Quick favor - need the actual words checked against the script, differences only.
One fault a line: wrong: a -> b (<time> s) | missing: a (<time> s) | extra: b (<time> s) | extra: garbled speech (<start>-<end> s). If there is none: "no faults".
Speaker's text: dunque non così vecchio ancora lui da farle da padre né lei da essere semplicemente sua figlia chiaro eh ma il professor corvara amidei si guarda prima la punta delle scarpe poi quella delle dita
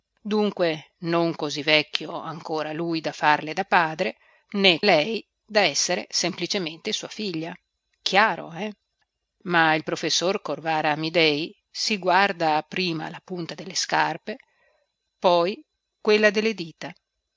no faults